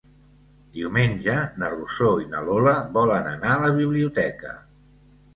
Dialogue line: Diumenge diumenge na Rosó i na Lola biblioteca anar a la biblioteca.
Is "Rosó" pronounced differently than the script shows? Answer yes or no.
no